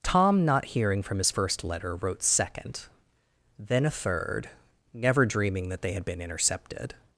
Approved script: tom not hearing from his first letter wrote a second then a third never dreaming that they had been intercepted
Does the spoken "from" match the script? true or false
true